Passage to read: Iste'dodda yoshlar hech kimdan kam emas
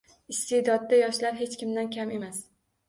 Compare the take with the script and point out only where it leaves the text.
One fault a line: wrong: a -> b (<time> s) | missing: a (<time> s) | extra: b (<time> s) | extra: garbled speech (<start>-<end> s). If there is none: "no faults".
no faults